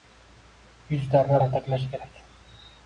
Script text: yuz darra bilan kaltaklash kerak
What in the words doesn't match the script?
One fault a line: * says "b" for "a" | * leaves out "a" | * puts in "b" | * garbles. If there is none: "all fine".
* leaves out "bilan"